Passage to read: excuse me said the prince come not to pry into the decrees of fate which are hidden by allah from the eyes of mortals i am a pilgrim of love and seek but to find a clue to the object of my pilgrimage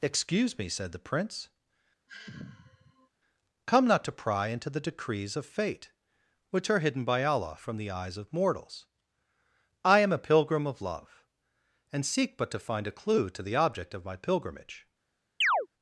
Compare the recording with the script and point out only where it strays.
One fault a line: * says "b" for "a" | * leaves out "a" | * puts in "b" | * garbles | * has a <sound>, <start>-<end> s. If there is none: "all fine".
* has a sigh, 2.1-3.1 s
* has a chirp, 15.4-15.7 s